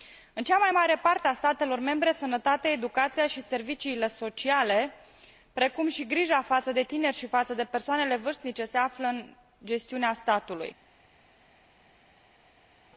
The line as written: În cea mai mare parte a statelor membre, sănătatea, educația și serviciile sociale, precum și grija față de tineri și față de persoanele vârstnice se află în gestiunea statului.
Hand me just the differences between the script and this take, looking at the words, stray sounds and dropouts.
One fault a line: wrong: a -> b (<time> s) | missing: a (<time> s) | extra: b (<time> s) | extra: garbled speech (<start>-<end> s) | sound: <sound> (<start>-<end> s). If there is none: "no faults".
no faults